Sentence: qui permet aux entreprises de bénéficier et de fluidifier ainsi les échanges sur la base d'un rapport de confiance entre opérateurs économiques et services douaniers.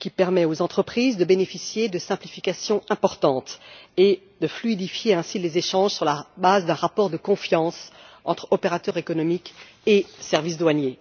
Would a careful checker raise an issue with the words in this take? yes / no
yes